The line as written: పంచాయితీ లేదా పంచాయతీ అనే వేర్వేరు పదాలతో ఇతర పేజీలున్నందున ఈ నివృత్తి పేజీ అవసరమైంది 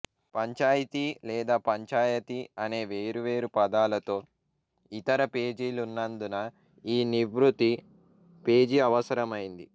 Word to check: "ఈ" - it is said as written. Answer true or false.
true